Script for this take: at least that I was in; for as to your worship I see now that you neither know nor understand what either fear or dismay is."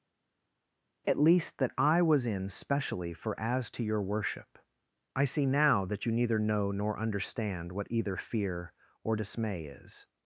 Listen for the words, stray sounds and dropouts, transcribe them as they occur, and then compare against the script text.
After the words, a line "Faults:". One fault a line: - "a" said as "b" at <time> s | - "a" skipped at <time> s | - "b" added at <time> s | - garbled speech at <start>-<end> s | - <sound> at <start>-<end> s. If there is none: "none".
at least that I was in; specially for as to your worship I see now that you neither know nor understand what either fear or dismay is."
Faults:
- "specially" added at 2.5 s